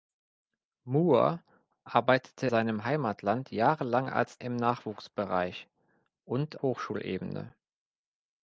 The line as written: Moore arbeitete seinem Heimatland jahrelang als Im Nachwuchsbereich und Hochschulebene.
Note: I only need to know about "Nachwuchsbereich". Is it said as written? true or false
true